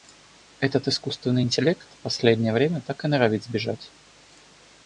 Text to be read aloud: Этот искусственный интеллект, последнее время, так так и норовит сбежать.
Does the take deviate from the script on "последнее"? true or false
false